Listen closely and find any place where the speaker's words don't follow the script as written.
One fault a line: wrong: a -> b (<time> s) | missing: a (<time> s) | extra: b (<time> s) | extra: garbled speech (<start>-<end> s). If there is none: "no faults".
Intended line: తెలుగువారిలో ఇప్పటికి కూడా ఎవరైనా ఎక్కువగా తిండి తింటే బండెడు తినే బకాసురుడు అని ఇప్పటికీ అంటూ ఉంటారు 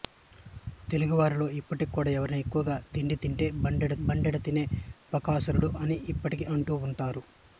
extra: బండెడు (4.1 s)